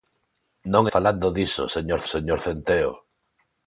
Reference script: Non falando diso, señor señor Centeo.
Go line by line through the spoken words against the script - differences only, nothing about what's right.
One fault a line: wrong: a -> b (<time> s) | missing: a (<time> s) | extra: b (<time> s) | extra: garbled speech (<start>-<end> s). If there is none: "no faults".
no faults